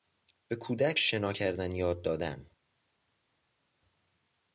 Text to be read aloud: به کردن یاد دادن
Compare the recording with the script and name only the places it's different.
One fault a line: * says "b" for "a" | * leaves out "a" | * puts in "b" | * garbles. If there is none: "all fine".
* puts in "کودک شنا"